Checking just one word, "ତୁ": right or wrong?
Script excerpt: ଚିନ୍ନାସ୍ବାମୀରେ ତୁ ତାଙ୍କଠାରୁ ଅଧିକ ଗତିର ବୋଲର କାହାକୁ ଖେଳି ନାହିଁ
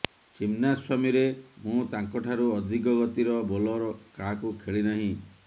wrong